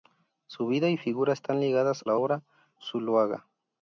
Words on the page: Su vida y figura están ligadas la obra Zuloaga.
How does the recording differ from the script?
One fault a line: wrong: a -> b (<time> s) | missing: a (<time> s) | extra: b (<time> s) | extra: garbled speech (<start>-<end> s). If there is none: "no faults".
no faults